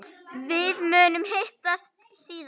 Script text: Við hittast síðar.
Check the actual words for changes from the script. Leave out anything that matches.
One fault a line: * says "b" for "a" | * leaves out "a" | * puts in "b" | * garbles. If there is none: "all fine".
* puts in "munum"